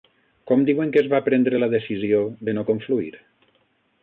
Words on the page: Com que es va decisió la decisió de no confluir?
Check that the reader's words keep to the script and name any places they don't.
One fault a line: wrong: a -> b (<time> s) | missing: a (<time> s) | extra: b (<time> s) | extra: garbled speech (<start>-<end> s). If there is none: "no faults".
extra: diuen (0.7 s)
wrong: decisió -> prendre (1.3 s)